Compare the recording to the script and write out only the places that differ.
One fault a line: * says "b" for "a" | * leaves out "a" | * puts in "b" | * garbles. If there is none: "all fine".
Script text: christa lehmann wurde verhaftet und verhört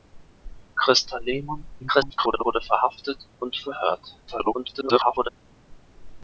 * garbles
* garbles